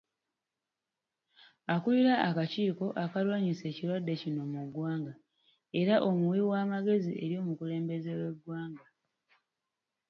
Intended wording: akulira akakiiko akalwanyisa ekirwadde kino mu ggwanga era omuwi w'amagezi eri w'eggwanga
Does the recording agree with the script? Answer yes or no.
no